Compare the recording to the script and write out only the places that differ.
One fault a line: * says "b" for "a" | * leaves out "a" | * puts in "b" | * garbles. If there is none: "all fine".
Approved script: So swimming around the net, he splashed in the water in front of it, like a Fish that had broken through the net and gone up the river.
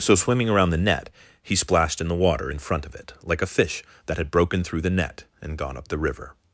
all fine